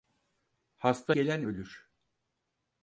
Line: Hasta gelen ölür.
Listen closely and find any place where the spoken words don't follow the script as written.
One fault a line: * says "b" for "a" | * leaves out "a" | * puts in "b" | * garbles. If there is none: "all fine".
all fine